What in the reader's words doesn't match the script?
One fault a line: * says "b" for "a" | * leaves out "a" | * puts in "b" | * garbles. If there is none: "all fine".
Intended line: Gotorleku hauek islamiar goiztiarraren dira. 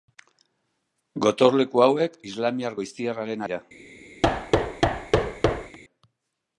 all fine